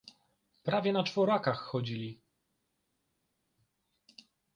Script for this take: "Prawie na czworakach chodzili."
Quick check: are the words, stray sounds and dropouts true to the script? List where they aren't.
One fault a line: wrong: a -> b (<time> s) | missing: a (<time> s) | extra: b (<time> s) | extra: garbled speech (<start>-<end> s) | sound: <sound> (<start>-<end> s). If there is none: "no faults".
no faults